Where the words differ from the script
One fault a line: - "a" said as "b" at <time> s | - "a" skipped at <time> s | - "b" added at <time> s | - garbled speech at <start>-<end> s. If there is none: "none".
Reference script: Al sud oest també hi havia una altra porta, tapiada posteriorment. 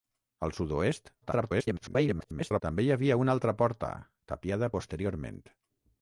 - garbled speech at 1.2-2.6 s